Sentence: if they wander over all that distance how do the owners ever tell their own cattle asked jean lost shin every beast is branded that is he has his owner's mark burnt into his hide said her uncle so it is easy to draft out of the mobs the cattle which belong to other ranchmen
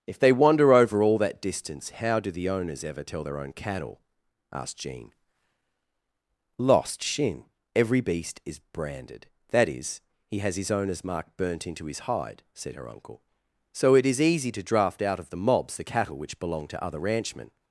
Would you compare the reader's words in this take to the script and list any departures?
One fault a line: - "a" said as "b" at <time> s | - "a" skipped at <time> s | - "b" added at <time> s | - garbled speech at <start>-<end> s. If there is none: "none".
none